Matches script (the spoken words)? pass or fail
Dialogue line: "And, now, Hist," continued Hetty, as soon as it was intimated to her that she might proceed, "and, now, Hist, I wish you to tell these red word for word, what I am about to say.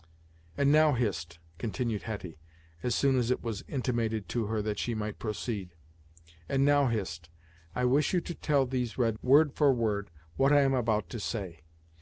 pass